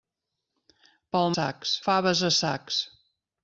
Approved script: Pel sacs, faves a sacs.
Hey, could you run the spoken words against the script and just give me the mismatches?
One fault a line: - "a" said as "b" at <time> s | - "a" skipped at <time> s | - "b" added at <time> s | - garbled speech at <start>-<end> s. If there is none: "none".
none